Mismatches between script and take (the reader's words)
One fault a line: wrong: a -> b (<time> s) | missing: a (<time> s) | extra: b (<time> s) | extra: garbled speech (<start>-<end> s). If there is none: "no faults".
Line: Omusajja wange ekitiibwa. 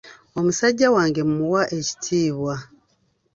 extra: mmuwa (1.3 s)